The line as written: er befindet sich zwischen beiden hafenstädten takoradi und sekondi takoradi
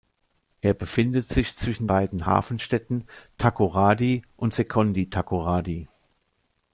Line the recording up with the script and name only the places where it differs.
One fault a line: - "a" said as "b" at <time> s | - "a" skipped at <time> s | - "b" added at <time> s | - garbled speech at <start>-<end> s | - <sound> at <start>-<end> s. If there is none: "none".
none